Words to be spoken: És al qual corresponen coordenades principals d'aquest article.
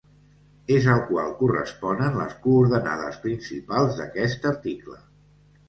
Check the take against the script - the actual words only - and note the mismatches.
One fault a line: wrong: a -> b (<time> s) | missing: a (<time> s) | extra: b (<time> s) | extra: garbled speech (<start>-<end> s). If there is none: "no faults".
extra: les (2.2 s)